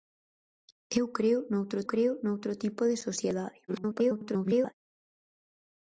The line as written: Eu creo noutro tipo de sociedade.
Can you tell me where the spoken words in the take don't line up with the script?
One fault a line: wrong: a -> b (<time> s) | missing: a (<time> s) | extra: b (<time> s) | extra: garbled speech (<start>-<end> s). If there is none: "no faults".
extra: creo noutro (1.9 s)
extra: garbled speech (3.7-4.7 s)